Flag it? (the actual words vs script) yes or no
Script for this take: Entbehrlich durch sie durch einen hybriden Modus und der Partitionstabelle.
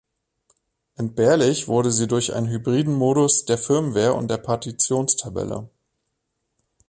yes